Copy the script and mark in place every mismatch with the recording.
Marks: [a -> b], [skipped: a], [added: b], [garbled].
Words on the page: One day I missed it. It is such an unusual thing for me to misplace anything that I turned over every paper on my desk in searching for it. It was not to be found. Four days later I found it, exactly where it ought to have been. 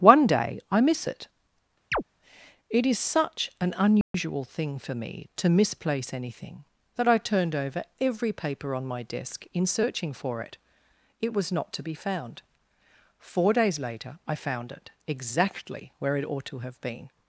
One day I [missed -> miss] it. It is such an unusual thing for me to misplace anything that I turned over every paper on my desk in searching for it. It was not to be found. Four days later I found it, exactly where it ought to have been.